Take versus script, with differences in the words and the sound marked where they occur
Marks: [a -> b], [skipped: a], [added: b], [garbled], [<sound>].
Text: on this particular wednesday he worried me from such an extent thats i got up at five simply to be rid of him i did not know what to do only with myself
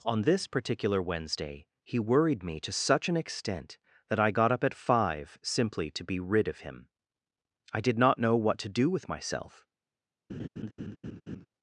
on this particular wednesday he worried me [from -> to] such an extent [thats -> that] i got up at five simply to be rid of him i did not know what to do [skipped: only] with myself [laugh]